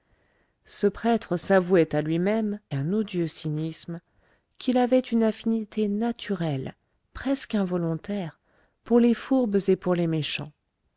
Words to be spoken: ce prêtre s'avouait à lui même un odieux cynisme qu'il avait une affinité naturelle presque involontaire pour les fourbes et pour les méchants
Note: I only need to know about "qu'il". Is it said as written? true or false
true